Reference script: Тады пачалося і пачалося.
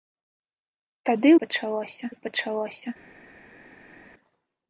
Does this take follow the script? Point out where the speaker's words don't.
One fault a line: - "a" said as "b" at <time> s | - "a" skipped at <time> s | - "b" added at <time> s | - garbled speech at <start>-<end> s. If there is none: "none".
none